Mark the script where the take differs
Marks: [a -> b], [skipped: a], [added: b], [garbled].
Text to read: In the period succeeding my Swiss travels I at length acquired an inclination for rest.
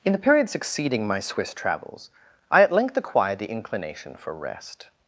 In the period succeeding my Swiss travels I at length acquired [an -> the] inclination for rest.